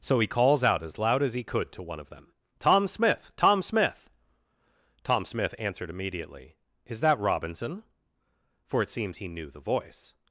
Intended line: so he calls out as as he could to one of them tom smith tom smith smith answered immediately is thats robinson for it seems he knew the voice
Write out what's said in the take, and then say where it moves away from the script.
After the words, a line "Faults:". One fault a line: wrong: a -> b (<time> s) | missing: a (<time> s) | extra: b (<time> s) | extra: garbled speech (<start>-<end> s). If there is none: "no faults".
so he calls out as loud as he could to one of them tom smith tom smith tom smith answered immediately is that robinson for it seems he knew the voice
Faults:
extra: loud (1.0 s)
extra: tom (5.0 s)
wrong: thats -> that (7.0 s)